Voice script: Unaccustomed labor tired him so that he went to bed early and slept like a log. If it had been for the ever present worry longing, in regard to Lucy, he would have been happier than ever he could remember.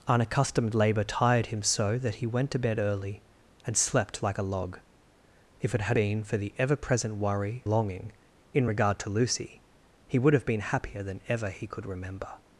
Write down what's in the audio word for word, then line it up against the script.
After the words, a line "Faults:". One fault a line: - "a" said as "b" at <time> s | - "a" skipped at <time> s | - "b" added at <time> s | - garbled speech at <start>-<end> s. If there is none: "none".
Unaccustomed labor tired him so that he went to bed early and slept like a log. If it had been for the ever present worry longing, in regard to Lucy, he would have been happier than ever he could remember.
Faults:
none